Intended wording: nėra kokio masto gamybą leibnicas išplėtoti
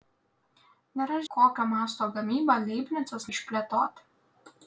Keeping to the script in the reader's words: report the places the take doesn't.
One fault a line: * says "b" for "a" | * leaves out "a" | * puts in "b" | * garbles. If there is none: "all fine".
all fine